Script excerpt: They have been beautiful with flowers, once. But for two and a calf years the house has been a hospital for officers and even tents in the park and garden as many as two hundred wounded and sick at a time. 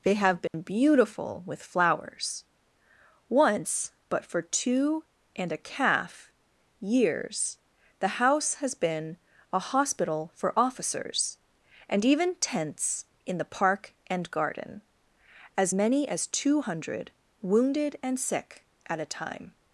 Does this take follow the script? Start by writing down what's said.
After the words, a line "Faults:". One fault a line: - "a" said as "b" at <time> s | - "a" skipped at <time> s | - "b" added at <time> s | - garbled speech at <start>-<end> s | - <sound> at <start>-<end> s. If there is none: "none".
They have been beautiful with flowers, once. But for two and a calf years the house has been a hospital for officers and even tents in the park and garden as many as two hundred wounded and sick at a time.
Faults:
- dropout at 0.5-0.5 s